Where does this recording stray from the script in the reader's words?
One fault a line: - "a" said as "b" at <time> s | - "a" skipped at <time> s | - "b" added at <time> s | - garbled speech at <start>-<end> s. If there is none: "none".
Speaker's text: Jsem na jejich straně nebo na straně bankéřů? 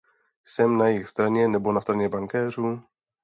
none